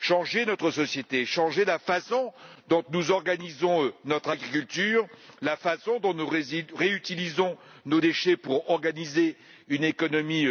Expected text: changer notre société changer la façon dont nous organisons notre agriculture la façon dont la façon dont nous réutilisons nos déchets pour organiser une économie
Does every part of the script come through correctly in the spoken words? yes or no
no